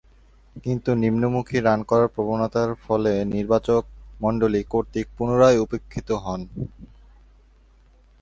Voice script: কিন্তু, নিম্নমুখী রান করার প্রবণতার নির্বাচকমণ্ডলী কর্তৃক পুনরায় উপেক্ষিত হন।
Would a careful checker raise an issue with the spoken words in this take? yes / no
yes